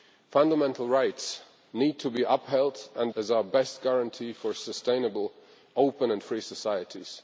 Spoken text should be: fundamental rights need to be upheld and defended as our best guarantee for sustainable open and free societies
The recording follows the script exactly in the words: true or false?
false